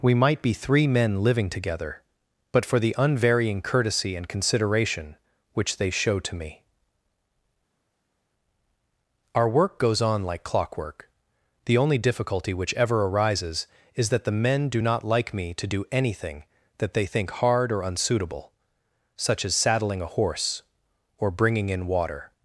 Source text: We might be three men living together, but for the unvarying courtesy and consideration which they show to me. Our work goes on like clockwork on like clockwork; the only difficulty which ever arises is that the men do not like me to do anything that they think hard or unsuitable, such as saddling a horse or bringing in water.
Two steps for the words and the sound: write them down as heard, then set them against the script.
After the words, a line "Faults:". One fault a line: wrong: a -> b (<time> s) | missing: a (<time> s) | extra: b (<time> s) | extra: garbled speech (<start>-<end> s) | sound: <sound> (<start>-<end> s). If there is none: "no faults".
We might be three men living together, but for the unvarying courtesy and consideration which they show to me. Our work goes on like clockwork; the only difficulty which ever arises is that the men do not like me to do anything that they think hard or unsuitable, such as saddling a horse or bringing in water.
Faults:
missing: on like clockwork (11.1 s)